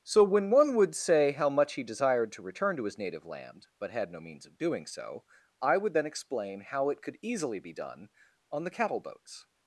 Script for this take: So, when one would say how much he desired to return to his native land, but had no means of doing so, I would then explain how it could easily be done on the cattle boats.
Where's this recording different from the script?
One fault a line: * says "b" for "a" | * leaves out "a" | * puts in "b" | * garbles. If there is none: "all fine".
all fine